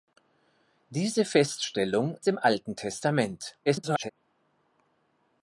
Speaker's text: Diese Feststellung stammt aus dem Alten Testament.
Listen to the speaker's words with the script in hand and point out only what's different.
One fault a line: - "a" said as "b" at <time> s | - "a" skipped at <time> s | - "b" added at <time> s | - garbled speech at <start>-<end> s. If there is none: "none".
- "stammt aus" skipped at 2.2 s
- garbled speech at 3.7-4.1 s